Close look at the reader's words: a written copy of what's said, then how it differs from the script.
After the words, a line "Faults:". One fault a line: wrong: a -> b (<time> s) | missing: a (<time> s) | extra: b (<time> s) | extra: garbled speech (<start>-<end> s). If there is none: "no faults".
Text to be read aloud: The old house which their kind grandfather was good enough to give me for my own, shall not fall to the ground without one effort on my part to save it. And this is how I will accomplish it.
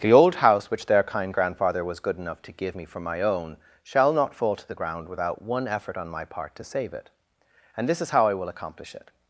The old house which their kind grandfather was good enough to give me for my own, shall not fall to the ground without one effort on my part to save it. And this is how I will accomplish it.
Faults:
no faults